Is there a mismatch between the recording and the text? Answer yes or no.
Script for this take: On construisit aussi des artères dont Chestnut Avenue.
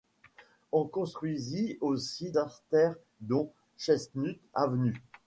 yes